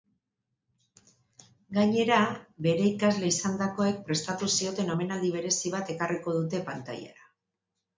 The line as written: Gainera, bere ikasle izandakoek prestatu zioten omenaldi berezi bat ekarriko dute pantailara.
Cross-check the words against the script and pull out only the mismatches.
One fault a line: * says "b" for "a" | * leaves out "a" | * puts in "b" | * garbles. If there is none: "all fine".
all fine